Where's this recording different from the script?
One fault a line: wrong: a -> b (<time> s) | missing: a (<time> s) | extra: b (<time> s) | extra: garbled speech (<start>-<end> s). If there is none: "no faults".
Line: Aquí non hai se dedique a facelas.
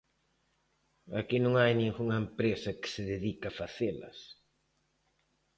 extra: ningunha empresa que (1.8 s)